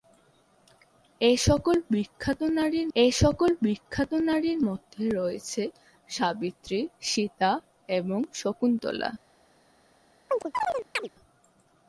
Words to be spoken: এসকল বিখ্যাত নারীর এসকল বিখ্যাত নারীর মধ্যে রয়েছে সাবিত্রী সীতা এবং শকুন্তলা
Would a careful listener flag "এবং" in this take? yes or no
no